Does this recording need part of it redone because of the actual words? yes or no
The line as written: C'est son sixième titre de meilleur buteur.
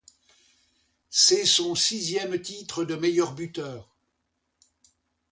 no